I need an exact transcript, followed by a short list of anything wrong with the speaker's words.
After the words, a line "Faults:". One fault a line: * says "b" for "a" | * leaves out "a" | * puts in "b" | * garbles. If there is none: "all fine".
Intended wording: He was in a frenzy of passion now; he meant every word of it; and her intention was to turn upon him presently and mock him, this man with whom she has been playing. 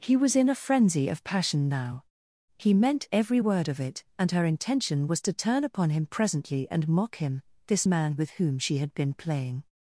He was in a frenzy of passion now; he meant every word of it; and her intention was to turn upon him presently and mock him, this man with whom she had been playing.
Faults:
* says "had" for "has"